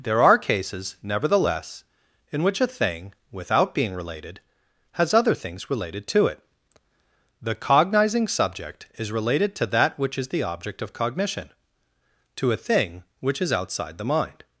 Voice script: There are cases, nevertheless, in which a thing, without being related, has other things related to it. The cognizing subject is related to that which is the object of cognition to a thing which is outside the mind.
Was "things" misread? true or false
false